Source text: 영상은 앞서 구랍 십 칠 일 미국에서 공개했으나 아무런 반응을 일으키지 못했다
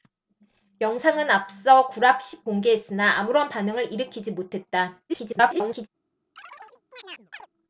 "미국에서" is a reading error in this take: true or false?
true